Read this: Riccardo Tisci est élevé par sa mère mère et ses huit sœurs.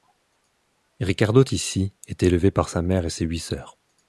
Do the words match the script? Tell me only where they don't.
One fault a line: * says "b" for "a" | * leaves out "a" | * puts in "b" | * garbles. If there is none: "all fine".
* leaves out "mère"